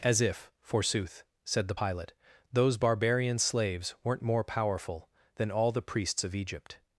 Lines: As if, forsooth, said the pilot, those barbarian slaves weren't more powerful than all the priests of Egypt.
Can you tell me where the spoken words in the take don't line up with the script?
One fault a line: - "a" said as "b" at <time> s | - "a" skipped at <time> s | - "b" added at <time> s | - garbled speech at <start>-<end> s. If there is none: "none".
none